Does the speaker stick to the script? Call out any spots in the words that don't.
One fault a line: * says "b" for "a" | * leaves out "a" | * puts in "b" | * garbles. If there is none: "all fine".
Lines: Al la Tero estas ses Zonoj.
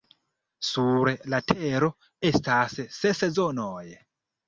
* says "Sur" for "Al"